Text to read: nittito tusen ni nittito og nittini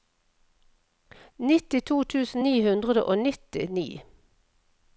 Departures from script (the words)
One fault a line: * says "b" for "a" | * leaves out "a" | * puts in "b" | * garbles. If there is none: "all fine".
* says "hundre" for "nittito"